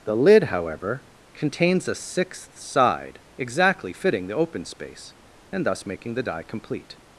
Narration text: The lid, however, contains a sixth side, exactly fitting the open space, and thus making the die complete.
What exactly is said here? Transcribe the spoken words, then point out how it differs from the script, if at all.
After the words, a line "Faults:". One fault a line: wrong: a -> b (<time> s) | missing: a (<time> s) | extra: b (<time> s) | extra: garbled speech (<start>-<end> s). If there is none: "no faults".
The lid, however, contains a sixth side, exactly fitting the open space, and thus making the die complete.
Faults:
no faults